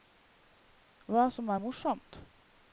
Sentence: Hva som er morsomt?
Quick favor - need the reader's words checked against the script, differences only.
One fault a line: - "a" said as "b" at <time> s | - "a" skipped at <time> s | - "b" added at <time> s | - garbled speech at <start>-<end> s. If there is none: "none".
none